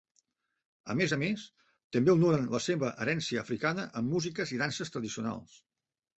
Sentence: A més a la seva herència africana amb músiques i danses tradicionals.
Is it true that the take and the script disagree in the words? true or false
true